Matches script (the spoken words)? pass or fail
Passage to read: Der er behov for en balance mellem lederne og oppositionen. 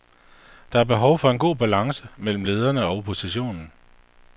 fail